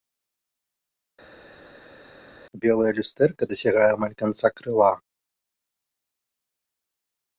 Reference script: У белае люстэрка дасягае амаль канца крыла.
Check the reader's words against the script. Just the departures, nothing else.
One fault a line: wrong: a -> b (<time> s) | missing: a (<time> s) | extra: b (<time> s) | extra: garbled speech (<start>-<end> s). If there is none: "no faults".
no faults